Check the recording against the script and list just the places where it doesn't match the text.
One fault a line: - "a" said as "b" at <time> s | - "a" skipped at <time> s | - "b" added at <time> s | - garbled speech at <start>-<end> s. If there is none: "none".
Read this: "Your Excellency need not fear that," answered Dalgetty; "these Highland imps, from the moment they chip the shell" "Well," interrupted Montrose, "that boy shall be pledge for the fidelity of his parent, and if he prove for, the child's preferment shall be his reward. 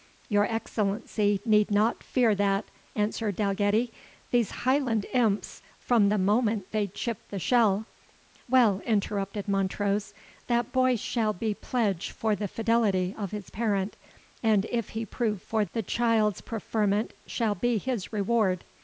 none